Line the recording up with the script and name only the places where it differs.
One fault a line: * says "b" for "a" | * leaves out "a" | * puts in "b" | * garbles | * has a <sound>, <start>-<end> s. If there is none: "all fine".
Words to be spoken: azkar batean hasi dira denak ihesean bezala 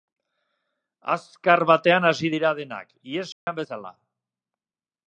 * has a dropout, 3.3-3.5 s